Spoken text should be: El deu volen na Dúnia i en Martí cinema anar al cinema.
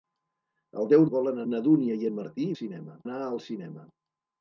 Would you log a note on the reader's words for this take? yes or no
no